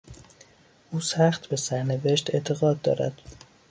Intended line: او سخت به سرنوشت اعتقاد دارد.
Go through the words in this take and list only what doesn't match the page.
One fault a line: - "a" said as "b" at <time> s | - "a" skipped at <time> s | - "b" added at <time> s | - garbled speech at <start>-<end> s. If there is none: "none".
none